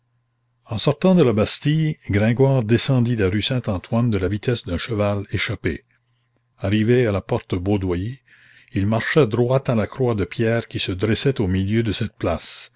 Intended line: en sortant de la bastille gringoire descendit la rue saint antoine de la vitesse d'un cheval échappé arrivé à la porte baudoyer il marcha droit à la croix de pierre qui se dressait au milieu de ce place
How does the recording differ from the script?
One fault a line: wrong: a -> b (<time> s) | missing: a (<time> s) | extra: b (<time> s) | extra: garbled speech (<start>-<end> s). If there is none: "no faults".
wrong: ce -> cette (11.9 s)